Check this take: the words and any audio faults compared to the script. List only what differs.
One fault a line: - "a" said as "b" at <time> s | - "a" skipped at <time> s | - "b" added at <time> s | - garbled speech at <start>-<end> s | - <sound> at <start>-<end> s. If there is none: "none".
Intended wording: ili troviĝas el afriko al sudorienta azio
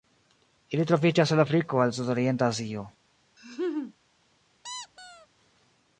- laugh at 3.4-3.9 s
- squeak at 4.6-5.3 s